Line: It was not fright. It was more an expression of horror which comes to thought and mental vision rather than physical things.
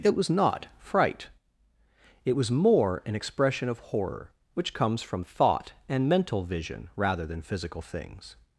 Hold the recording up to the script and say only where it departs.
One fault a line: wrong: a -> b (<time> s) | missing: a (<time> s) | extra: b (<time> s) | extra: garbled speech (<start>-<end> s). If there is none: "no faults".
wrong: to -> from (5.0 s)